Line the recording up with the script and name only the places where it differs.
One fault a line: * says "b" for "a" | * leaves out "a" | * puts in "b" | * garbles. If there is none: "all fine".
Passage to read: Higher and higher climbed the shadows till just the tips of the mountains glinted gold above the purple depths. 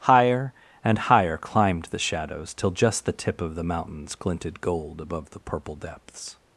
* says "tip" for "tips"